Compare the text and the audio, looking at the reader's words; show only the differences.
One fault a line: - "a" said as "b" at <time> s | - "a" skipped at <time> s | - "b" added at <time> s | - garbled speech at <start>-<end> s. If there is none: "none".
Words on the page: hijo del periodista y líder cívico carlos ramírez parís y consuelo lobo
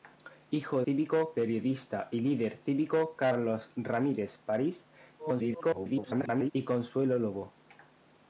- "del" said as "cívico" at 0.8 s
- garbled speech at 5.2-6.5 s